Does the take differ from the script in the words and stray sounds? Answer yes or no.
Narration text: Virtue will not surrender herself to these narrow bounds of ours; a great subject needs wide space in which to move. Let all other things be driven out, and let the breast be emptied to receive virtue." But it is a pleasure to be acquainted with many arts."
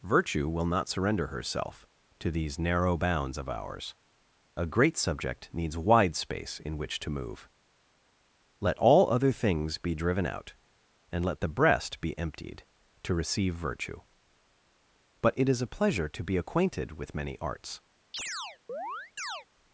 yes